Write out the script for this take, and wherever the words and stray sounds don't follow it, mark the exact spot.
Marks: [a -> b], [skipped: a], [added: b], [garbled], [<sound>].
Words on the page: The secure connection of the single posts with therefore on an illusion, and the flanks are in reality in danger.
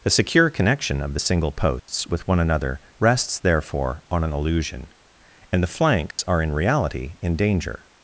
The secure connection of the single posts [dropout] with [added: one another rests] therefore on an illusion, and the flanks [dropout] are in reality in danger.